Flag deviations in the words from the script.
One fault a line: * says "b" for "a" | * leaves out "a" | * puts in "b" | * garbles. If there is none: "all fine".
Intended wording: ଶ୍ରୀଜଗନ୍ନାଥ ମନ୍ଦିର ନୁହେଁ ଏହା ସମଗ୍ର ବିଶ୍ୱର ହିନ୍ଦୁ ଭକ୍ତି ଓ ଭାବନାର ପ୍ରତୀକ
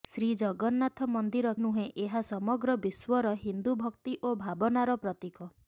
all fine